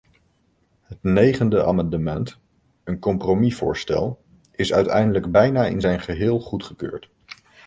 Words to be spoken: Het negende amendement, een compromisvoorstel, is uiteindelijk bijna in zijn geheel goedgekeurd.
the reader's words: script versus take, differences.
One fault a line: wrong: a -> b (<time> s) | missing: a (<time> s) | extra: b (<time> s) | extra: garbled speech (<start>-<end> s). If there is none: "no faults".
no faults